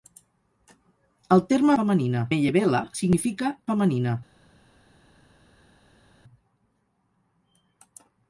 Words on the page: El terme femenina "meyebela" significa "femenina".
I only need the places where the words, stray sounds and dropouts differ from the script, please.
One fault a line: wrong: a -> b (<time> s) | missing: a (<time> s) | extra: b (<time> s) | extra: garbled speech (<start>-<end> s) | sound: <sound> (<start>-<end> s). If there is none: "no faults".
no faults